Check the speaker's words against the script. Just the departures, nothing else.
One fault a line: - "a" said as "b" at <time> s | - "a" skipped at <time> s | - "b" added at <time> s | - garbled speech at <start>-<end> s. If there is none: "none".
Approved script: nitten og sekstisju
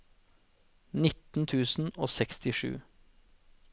- "tusen" added at 1.5 s